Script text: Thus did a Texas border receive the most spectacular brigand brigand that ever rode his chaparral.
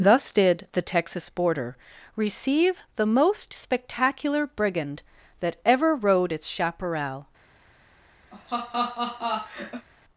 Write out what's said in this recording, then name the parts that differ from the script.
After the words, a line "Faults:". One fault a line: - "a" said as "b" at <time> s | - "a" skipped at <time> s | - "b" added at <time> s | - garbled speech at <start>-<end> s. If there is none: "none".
Thus did the Texas border receive the most spectacular brigand that ever rode its chaparral.
Faults:
- "a" said as "the" at 0.7 s
- "brigand" skipped at 5.0 s
- "his" said as "its" at 6.3 s